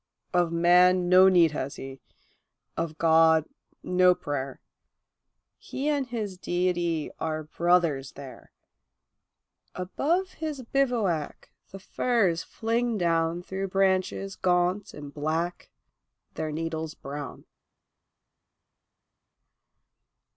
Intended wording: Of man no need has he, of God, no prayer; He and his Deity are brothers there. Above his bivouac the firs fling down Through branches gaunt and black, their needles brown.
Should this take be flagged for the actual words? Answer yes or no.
no